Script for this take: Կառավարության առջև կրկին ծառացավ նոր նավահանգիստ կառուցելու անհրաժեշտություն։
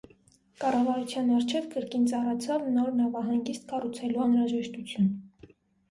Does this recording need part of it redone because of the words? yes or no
no